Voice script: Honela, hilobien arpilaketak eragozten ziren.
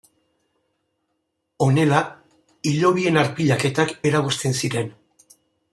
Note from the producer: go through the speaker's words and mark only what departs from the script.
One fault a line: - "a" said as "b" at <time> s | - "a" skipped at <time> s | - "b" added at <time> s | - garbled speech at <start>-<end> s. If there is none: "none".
none